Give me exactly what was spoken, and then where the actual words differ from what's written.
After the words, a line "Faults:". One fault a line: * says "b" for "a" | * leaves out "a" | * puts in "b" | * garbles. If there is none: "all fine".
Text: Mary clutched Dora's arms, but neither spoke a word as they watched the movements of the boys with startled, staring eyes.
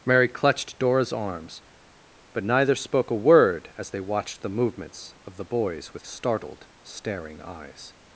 Mary clutched Dora's arms, but neither spoke a word as they watched the movements of the boys with startled, staring eyes.
Faults:
all fine